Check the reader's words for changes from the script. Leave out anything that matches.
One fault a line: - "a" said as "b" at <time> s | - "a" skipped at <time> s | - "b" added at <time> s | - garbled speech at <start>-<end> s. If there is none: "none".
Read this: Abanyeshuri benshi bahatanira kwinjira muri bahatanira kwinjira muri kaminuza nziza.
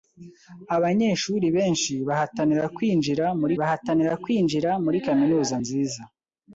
none